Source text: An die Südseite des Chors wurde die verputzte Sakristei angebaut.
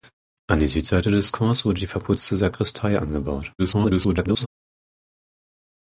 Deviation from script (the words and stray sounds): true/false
true